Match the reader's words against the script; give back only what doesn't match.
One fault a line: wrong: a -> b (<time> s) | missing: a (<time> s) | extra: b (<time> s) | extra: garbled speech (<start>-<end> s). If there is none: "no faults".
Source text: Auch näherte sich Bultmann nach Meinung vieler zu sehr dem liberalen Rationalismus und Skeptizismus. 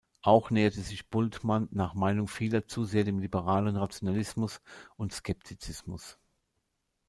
no faults